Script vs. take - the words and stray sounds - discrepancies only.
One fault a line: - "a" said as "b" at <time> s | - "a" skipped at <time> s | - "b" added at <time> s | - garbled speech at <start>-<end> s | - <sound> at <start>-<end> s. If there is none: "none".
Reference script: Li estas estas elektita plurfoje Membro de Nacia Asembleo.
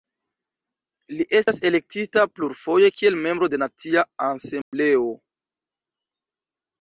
- "estas" skipped at 1.6 s
- "kiel" added at 3.0 s
- dropout at 4.6-4.7 s